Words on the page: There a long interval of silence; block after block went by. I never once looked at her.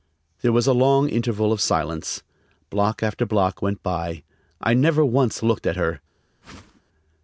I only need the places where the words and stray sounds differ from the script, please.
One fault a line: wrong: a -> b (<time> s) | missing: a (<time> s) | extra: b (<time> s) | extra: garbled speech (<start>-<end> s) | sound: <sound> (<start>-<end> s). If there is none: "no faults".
extra: was (0.5 s)
sound: whoosh (6.4-6.8 s)